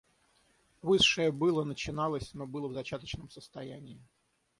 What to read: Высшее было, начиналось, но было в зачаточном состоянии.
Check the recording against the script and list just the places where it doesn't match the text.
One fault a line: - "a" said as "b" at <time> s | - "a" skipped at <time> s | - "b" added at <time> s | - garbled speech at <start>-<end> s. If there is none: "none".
none